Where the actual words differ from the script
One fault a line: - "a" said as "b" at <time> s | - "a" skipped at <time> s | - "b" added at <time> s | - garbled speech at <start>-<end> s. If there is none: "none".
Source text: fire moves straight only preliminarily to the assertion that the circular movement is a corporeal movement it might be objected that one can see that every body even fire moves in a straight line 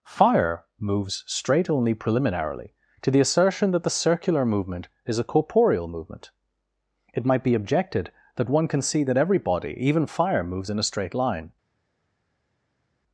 none